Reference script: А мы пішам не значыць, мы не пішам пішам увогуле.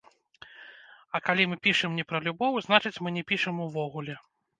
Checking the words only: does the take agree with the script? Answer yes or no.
no